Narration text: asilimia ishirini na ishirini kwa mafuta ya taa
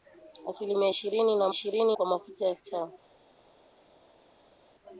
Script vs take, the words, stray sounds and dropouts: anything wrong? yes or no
no